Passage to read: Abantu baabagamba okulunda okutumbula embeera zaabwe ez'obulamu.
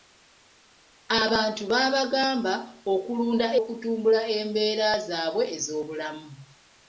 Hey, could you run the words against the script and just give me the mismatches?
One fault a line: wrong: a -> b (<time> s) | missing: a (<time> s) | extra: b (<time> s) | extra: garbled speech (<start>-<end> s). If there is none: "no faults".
no faults